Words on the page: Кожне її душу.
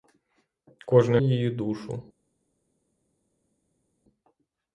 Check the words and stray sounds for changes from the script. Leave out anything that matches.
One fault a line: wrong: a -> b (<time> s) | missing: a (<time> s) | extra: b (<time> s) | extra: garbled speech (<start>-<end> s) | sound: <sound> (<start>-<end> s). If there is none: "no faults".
no faults